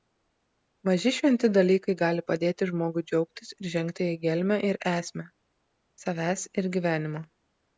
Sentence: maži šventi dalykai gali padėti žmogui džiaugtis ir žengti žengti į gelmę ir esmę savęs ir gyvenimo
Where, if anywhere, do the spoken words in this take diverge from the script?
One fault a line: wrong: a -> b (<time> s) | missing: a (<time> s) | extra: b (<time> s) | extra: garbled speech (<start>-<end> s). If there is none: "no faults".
missing: žengti (4.1 s)